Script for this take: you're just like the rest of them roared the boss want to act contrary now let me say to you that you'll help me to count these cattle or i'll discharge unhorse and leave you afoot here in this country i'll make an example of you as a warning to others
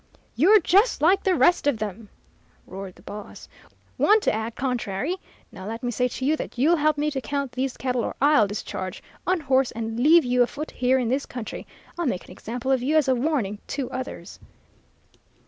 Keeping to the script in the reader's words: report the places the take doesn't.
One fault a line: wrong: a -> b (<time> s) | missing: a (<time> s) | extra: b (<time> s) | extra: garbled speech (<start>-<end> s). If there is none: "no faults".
no faults